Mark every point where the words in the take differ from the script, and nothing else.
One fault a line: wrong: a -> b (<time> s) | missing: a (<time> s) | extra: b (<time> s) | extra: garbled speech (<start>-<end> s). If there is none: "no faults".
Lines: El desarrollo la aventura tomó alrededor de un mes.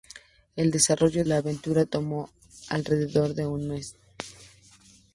no faults